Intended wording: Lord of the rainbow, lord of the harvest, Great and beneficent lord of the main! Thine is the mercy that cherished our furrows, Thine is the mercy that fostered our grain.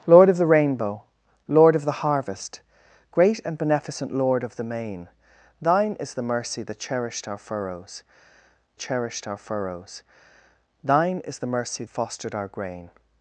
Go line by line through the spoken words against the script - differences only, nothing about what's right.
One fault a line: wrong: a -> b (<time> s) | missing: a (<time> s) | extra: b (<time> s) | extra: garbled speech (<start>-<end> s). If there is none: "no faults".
extra: cherished our furrows (8.8 s)
missing: that (11.8 s)